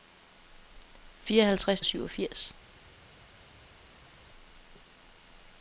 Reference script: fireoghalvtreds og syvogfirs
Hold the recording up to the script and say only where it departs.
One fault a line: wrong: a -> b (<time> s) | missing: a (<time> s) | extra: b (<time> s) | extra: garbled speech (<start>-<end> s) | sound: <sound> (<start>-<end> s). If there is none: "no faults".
no faults